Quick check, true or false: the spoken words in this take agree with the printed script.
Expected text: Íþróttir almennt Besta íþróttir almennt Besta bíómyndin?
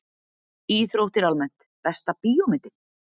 false